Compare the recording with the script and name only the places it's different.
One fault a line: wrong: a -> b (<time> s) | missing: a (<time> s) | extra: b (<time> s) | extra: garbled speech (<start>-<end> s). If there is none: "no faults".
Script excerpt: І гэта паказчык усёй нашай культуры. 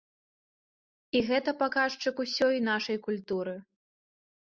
no faults